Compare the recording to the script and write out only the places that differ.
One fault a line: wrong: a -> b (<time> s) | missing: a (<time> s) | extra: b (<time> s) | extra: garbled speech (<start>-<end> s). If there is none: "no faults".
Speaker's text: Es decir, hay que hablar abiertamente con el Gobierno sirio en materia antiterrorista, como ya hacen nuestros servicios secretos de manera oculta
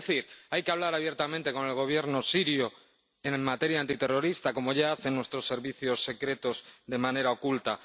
no faults